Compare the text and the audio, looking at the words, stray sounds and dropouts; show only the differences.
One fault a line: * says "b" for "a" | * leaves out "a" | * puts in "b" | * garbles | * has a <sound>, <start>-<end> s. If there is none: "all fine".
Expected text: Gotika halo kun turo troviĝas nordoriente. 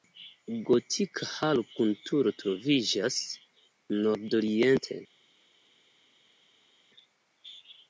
all fine